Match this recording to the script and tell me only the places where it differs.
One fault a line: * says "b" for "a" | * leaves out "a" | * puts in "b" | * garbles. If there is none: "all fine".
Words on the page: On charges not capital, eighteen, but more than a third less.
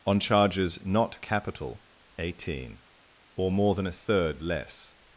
* says "or" for "but"